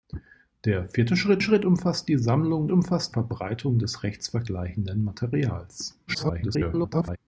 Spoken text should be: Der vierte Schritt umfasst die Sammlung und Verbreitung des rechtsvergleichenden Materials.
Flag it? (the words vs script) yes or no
yes